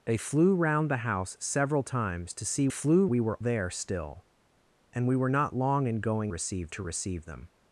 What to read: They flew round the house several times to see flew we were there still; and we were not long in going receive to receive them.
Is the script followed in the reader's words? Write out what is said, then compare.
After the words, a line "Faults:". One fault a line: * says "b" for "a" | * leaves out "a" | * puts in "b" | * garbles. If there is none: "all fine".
They flew round the house several times to see flew we were there still; and we were not long in going receive to receive them.
Faults:
all fine